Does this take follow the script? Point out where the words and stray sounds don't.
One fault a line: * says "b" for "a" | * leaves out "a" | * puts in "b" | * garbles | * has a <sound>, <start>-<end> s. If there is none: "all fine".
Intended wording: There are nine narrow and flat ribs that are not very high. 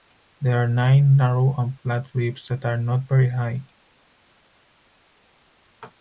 all fine